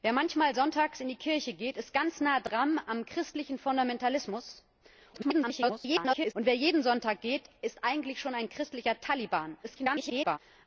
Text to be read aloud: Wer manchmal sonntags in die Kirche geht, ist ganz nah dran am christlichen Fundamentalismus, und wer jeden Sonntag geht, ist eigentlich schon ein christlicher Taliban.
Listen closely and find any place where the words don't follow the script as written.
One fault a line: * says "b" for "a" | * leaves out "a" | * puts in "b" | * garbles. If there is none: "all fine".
* garbles
* garbles